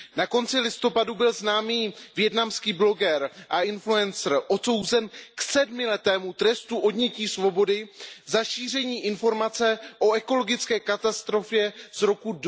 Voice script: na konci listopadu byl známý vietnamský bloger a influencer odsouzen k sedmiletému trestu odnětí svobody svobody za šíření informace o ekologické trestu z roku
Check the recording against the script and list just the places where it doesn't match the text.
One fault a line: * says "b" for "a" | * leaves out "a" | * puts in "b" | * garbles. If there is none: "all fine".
* leaves out "svobody"
* says "katastrofě" for "trestu"